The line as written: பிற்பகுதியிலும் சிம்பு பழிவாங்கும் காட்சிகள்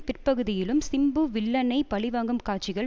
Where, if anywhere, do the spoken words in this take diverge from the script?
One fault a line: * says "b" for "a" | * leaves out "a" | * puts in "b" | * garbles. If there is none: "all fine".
* puts in "வில்லனை"